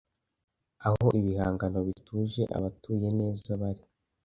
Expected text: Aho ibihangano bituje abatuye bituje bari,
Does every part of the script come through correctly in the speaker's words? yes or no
no